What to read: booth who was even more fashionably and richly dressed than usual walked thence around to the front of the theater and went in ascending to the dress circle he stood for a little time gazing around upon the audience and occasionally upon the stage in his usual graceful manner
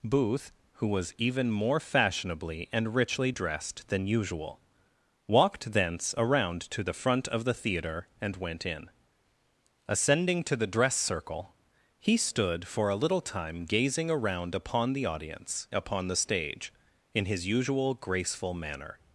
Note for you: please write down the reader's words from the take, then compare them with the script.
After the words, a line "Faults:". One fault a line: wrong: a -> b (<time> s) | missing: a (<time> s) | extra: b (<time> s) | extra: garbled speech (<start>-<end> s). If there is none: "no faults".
booth who was even more fashionably and richly dressed than usual walked thence around to the front of the theater and went in ascending to the dress circle he stood for a little time gazing around upon the audience upon the stage in his usual graceful manner
Faults:
missing: and occasionally (15.7 s)